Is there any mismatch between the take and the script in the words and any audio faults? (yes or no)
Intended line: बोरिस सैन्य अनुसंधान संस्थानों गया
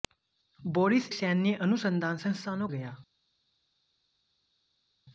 no